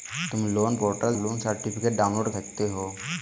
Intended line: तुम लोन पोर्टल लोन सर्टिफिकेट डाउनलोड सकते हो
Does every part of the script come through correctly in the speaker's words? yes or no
yes